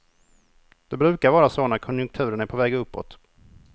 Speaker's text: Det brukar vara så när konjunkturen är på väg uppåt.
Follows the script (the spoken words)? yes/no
yes